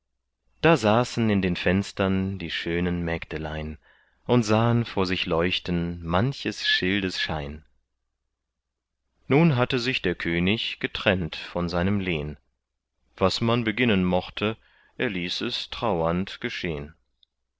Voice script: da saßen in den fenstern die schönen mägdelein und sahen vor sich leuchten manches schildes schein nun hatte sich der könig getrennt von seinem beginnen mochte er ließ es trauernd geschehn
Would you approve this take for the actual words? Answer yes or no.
no